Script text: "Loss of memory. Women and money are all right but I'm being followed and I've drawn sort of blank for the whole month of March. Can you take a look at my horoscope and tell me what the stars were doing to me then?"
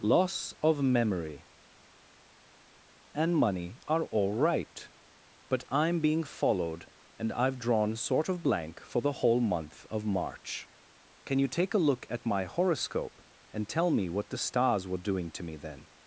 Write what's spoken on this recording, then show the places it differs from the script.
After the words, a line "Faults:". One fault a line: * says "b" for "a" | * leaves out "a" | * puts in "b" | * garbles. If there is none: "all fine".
"Loss of memory. And money are all right but I'm being followed and I've drawn sort of blank for the whole month of March. Can you take a look at my horoscope and tell me what the stars were doing to me then?"
Faults:
* leaves out "Women"